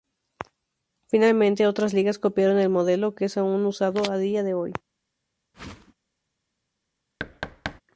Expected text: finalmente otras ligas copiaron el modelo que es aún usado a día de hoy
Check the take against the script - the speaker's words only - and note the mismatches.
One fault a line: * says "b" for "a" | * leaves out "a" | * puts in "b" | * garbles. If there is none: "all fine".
all fine